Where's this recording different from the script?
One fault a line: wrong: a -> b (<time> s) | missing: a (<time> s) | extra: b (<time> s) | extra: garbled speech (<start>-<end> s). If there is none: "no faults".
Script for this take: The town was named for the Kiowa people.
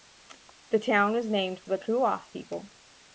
no faults